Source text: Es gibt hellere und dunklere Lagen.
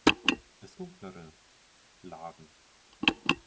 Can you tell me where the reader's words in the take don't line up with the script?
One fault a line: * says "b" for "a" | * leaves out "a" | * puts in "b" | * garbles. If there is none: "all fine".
* leaves out "gibt hellere und"